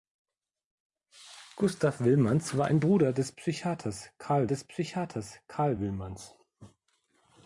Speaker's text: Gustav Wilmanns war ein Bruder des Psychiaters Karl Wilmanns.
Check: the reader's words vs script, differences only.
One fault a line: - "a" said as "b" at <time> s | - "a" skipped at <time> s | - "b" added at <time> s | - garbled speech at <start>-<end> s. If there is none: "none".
- "des Psychiaters Karl" added at 4.5 s